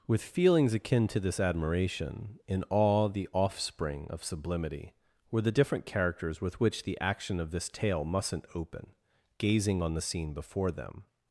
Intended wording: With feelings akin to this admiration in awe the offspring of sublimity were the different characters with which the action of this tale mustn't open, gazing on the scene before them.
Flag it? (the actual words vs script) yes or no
no